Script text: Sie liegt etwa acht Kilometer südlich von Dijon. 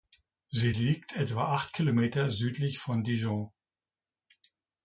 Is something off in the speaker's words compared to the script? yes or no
no